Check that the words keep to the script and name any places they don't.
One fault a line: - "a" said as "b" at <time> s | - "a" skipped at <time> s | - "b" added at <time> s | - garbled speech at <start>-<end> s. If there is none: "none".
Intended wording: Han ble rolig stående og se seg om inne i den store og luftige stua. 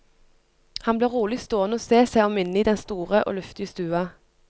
none